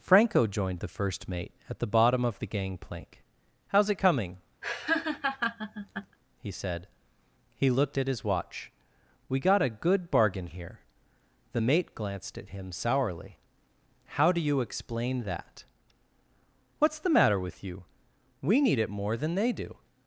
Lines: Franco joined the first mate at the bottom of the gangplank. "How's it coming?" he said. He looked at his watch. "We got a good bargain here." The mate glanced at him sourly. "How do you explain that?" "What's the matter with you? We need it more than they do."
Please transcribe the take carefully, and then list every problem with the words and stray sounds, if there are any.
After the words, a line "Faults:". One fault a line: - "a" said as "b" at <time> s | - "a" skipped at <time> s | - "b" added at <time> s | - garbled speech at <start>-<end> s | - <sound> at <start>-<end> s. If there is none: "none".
Franco joined the first mate at the bottom of the gangplank. "How's it coming?" he said. He looked at his watch. "We got a good bargain here." The mate glanced at him sourly. "How do you explain that?" "What's the matter with you? We need it more than they do."
Faults:
- laugh at 4.6-6.2 s